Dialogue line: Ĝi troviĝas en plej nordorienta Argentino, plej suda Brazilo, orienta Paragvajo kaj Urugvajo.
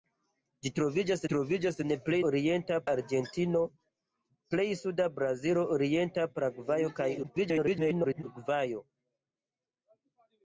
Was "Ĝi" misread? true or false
false